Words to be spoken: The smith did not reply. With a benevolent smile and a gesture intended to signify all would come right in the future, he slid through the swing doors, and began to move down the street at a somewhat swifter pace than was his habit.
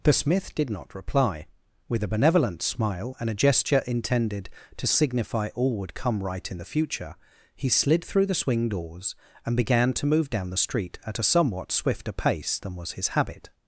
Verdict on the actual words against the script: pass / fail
pass